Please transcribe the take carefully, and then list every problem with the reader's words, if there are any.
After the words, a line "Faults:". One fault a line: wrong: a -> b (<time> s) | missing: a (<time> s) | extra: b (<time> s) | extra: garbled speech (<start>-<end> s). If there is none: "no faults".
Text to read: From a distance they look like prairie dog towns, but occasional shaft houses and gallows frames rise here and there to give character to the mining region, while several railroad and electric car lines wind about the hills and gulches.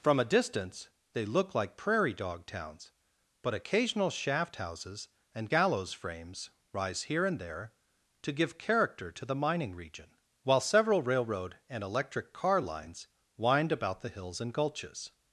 From a distance they look like prairie dog towns, but occasional shaft houses and gallows frames rise here and there to give character to the mining region, while several railroad and electric car lines wind about the hills and gulches.
Faults:
no faults